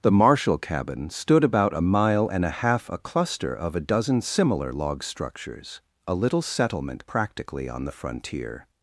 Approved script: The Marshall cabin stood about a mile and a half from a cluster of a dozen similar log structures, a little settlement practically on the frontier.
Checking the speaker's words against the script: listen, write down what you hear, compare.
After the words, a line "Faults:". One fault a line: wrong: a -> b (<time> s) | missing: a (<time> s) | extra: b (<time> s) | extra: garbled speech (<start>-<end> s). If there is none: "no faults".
The Marshall cabin stood about a mile and a half a cluster of a dozen similar log structures, a little settlement practically on the frontier.
Faults:
missing: from (2.9 s)